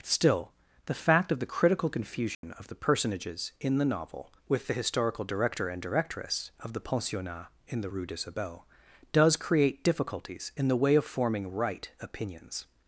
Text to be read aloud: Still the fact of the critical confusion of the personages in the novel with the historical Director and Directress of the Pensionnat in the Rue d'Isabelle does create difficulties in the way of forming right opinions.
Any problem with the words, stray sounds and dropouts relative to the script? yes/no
yes